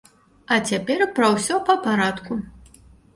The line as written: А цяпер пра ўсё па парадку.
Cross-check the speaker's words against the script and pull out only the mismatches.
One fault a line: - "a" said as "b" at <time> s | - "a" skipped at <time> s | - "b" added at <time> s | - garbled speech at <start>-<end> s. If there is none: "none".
none